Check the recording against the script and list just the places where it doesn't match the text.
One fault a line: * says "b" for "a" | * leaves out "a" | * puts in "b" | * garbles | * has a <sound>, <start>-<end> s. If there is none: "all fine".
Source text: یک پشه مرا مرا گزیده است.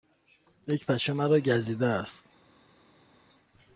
* leaves out "مرا"